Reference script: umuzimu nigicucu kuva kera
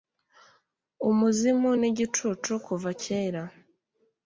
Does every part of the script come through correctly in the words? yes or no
yes